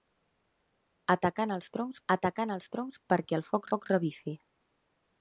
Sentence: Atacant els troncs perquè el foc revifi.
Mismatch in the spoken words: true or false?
true